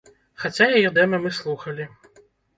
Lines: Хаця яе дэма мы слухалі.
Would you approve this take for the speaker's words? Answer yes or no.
yes